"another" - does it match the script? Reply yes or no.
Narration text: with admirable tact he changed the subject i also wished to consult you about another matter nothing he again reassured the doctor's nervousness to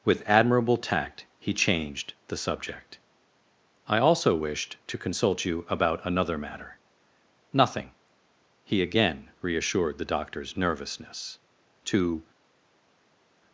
yes